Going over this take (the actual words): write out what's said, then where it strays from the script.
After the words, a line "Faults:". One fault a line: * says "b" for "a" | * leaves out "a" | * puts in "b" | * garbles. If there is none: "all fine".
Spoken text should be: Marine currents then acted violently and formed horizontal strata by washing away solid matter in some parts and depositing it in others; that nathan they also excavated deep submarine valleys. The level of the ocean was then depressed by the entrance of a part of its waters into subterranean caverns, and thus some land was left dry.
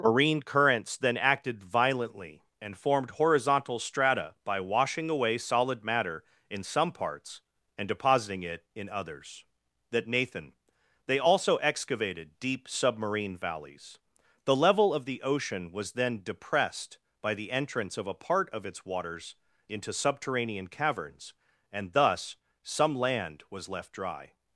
Marine currents then acted violently and formed horizontal strata by washing away solid matter in some parts and depositing it in others; that nathan they also excavated deep submarine valleys. The level of the ocean was then depressed by the entrance of a part of its waters into subterranean caverns, and thus some land was left dry.
Faults:
all fine